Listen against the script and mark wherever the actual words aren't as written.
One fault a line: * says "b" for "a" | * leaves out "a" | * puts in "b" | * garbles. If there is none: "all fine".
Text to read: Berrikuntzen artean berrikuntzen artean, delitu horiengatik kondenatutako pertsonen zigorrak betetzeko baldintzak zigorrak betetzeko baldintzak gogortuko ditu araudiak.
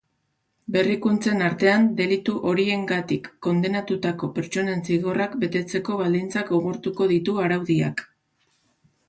* leaves out "berrikuntzen artean"
* leaves out "zigorrak betetzeko baldintzak"